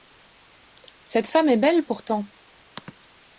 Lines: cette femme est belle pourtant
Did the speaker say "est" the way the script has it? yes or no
yes